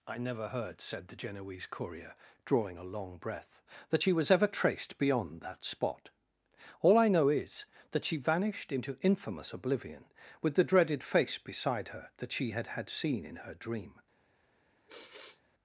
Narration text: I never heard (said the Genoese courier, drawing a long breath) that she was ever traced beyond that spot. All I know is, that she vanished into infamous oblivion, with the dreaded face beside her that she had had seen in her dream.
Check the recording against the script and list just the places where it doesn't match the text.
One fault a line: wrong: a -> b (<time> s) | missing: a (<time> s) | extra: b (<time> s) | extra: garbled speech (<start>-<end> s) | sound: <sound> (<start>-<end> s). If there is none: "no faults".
sound: sigh (14.9-15.4 s)